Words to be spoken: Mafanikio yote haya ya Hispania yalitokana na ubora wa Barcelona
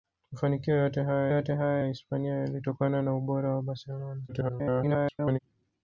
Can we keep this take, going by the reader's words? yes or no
no